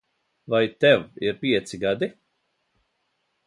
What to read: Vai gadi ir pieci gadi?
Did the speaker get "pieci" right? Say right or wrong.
right